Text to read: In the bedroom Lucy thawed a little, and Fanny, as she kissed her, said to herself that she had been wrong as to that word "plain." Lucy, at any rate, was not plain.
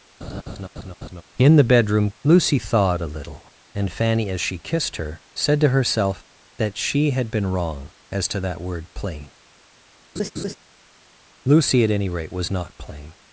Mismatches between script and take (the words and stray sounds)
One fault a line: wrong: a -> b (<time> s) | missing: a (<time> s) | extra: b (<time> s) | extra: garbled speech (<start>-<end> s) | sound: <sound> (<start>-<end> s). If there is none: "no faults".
sound: laugh (0.2-1.2 s)
sound: laugh (10.2-10.5 s)